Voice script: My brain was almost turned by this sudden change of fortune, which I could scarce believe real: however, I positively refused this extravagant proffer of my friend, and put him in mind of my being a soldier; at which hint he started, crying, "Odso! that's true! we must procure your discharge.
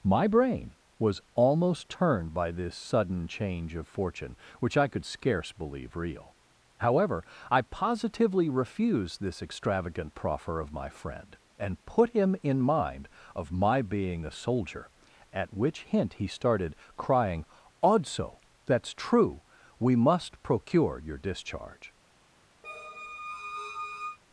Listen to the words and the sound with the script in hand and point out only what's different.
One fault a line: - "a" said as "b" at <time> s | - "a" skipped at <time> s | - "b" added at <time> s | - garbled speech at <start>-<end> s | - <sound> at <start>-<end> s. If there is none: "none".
- squeak at 22.6-24.2 s